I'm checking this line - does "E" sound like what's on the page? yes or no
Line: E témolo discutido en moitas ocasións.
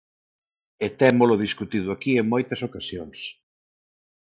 yes